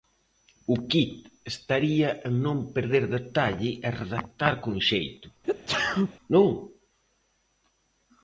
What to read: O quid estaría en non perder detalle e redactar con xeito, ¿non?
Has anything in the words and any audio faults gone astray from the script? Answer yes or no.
yes